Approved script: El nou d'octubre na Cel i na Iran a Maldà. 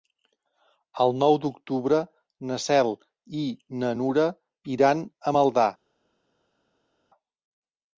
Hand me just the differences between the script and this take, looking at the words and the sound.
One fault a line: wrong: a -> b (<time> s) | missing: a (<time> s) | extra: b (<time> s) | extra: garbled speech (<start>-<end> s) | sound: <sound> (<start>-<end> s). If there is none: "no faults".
extra: Nura (4.0 s)